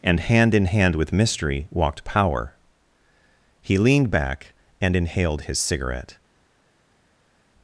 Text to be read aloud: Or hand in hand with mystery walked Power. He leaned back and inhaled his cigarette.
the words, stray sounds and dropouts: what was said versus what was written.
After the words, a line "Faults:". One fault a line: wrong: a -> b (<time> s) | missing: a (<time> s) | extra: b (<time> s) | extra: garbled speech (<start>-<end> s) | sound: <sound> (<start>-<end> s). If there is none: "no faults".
And hand in hand with mystery walked Power. He leaned back and inhaled his cigarette.
Faults:
wrong: Or -> And (0.0 s)